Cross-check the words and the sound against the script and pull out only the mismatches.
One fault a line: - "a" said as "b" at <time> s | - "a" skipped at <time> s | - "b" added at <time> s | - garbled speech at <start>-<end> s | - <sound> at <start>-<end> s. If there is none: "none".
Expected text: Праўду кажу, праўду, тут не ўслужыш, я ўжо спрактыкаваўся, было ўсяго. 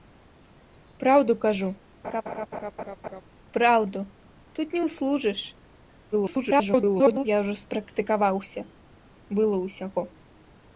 - laugh at 2.0-3.2 s
- garbled speech at 6.1-7.2 s